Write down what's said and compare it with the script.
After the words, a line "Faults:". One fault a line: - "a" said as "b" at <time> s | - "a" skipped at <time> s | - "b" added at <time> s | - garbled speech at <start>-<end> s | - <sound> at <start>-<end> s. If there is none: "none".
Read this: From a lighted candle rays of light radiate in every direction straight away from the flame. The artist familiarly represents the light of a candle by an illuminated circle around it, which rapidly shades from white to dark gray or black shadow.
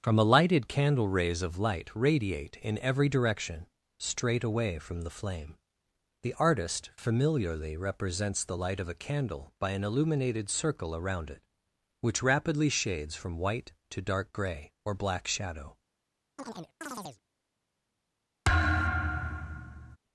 From a lighted candle rays of light radiate in every direction straight away from the flame. The artist familiarly represents the light of a candle by an illuminated circle around it, which rapidly shades from white to dark gray or black shadow.
Faults:
- chirp at 16.4-17.2 s
- thud at 18.4-20.0 s